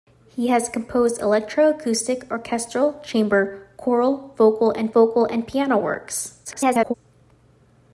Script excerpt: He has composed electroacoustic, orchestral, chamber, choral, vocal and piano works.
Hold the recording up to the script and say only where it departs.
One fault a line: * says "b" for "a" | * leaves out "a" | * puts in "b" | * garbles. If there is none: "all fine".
* puts in "vocal and"
* garbles